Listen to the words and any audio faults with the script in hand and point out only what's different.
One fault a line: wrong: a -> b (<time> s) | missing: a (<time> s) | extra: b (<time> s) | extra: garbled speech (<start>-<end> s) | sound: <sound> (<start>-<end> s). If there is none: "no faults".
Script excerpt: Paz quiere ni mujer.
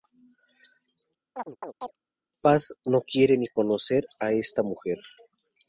sound: chirp (1.3-2.0 s)
extra: no (2.9 s)
extra: conocer a esta (3.5 s)